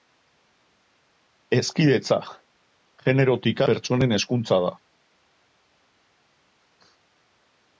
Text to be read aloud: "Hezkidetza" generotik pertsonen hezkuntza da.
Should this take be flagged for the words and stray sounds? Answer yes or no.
no